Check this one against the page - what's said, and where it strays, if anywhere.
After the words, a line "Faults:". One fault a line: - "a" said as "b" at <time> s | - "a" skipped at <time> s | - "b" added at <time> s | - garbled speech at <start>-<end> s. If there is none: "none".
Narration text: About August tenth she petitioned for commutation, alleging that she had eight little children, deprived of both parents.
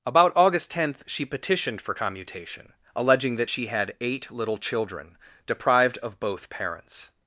About August tenth she petitioned for commutation, alleging that she had eight little children, deprived of both parents.
Faults:
none